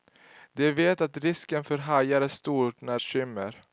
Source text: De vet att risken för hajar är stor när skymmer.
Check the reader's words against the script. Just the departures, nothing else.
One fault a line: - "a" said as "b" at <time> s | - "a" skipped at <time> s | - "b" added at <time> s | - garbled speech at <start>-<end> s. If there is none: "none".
none